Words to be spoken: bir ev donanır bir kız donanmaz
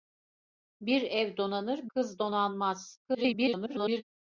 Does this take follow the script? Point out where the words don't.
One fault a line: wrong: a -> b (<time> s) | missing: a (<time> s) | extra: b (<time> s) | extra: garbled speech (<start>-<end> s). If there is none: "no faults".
missing: bir (1.9 s)
extra: garbled speech (3.0-4.0 s)